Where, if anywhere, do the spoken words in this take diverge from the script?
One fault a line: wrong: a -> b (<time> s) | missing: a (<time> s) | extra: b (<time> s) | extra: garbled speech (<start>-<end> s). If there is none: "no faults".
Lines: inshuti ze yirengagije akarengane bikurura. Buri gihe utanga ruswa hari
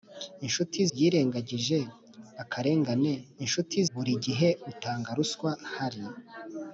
missing: ze (0.8 s)
wrong: bikurura -> inshuti (3.4 s)